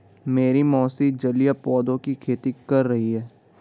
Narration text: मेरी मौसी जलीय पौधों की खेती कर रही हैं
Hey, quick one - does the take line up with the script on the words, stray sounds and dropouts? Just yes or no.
yes